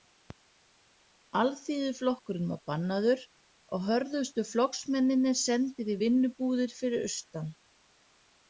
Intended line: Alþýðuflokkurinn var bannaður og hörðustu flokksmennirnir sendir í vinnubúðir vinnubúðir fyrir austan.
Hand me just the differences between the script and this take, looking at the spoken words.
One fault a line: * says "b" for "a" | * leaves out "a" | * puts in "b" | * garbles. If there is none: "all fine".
* leaves out "vinnubúðir"